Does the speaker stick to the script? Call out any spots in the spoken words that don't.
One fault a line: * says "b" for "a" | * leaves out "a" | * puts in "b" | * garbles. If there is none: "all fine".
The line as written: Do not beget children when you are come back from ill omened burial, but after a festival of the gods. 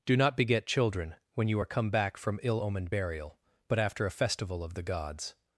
all fine